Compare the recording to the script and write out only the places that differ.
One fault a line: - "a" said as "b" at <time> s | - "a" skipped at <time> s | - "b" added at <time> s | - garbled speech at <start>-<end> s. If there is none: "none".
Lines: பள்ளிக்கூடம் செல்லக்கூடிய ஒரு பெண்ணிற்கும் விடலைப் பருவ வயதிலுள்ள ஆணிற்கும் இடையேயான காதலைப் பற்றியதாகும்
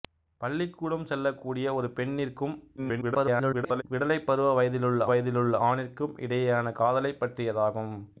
- garbled speech at 2.8-3.8 s
- "வயதிலுள்ள" added at 5.1 s